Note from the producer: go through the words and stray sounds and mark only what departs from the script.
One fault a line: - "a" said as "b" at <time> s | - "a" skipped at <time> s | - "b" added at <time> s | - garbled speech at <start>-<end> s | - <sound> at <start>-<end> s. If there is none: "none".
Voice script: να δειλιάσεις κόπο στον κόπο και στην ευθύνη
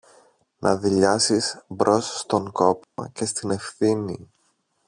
- "κόπο" said as "μπρος" at 1.7 s
- dropout at 2.8-3.0 s